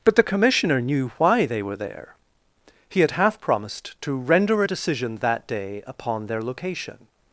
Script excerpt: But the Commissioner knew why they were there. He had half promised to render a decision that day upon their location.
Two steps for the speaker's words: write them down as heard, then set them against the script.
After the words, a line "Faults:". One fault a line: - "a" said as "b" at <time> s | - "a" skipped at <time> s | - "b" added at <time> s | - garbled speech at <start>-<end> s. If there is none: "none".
But the Commissioner knew why they were there. He had half promised to render a decision that day upon their location.
Faults:
none